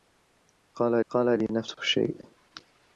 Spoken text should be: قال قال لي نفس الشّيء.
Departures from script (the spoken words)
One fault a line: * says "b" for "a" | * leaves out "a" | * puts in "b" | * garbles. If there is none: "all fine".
all fine